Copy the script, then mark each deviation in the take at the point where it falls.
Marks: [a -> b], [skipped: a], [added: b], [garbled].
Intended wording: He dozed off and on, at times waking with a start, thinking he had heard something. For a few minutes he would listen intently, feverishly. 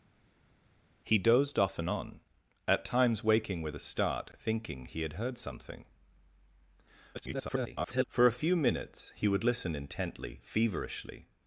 He dozed off and on, at times waking with a start, thinking he had heard something. [garbled] For a few minutes he would listen intently, feverishly.